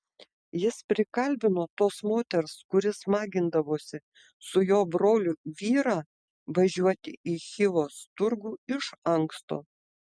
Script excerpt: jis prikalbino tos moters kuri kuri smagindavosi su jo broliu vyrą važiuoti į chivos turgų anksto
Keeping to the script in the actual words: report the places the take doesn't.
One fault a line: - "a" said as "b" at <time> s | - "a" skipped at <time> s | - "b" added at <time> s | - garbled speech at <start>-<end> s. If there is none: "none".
- "kuri" skipped at 2.9 s
- "iš" added at 8.8 s